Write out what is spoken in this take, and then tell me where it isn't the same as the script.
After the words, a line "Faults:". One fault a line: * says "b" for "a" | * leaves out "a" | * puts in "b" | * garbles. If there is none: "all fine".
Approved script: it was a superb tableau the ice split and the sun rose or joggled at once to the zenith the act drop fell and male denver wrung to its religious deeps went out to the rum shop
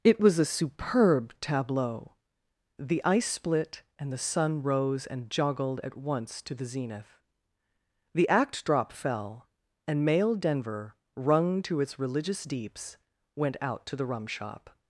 it was a superb tableau the ice split and the sun rose and joggled at once to the zenith the act drop fell and male denver wrung to its religious deeps went out to the rum shop
Faults:
* says "and" for "or"